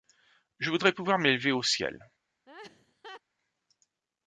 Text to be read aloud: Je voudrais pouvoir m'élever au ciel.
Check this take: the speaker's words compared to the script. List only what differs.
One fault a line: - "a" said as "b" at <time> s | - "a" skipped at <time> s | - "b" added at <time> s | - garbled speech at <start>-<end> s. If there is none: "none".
none